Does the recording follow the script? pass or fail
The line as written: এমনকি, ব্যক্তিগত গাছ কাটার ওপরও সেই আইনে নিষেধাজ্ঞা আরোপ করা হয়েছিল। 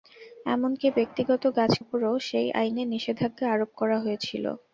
fail